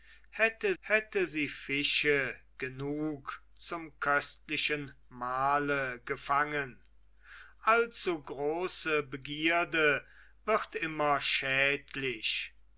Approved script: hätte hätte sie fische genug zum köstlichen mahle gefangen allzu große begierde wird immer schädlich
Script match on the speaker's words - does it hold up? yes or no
yes